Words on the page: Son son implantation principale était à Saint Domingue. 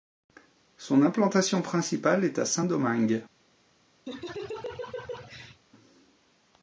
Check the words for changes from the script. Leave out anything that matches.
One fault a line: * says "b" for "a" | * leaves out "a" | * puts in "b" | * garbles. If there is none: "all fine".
* leaves out "son"
* says "est" for "était"